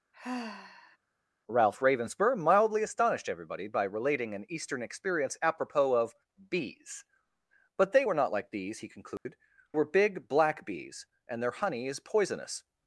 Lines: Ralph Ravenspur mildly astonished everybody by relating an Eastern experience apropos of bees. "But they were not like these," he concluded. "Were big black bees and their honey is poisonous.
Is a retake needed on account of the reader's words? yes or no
no